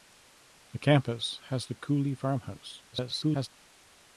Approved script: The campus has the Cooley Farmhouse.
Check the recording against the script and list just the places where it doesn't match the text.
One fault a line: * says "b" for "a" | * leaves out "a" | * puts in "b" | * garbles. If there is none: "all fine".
* garbles